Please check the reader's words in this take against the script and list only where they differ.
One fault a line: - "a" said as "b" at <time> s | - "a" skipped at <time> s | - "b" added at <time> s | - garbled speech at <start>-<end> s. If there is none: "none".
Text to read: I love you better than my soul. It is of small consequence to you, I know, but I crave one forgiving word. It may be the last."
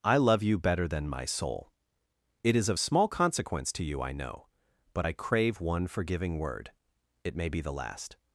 none